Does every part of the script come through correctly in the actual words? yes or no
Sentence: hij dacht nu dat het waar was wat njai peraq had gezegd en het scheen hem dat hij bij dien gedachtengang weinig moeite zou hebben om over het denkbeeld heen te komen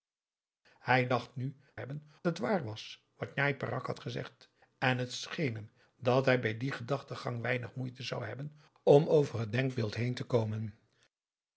no